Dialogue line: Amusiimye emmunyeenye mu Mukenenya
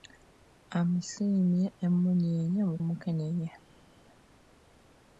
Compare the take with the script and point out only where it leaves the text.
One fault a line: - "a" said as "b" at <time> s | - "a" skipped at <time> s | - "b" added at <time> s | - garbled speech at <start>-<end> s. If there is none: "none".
none